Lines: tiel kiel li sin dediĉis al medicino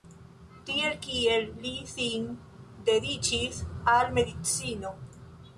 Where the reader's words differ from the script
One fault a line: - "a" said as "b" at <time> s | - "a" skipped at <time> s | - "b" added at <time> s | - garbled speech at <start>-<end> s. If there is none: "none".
none